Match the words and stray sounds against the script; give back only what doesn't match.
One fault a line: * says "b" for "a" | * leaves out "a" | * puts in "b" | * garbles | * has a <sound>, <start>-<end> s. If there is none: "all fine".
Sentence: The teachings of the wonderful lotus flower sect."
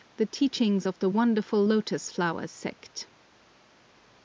all fine